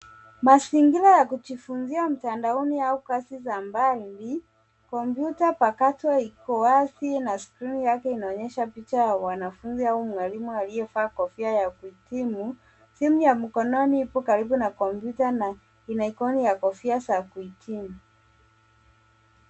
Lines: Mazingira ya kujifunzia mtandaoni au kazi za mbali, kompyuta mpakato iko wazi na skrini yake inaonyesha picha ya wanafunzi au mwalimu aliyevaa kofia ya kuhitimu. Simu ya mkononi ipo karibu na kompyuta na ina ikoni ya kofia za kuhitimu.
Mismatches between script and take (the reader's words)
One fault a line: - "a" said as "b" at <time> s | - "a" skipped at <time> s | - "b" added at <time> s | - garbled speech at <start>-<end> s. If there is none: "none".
none